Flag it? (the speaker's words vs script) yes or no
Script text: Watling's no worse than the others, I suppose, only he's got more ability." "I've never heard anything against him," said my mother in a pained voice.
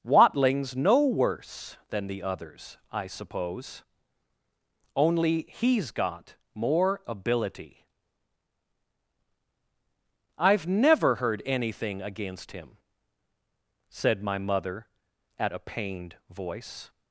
yes